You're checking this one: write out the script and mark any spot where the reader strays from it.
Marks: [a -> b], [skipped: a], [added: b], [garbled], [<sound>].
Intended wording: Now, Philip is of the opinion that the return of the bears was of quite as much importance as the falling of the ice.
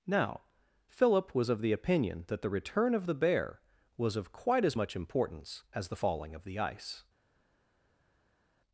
Now, Philip [is -> was] of the opinion that the return of the [bears -> bear] was of quite as much importance as the falling of the ice.